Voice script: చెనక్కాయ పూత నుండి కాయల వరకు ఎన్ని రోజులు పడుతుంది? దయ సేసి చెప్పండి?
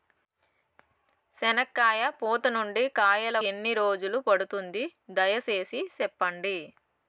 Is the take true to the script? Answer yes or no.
no